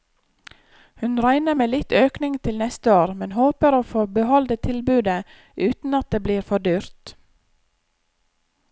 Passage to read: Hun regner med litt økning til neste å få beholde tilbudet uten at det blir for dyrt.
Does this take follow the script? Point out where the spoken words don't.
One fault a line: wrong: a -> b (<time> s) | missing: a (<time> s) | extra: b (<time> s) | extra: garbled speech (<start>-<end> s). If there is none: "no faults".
extra: år men håper (3.0 s)